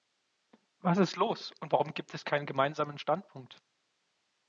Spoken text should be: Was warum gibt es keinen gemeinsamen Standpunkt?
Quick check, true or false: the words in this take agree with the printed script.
false